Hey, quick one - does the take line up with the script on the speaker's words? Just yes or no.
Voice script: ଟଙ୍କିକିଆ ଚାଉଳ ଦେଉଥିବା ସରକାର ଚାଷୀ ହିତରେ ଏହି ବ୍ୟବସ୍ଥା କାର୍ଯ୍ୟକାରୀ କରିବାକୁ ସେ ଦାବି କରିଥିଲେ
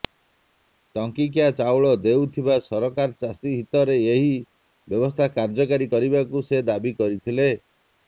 yes